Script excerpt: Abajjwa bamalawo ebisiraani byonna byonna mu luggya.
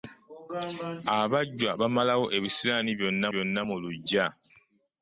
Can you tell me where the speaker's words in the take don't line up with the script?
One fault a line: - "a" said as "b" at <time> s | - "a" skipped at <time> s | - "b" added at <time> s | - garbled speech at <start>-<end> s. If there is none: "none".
none